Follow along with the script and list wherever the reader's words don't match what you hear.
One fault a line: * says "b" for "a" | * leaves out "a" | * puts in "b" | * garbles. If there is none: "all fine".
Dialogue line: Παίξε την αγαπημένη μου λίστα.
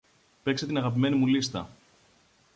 all fine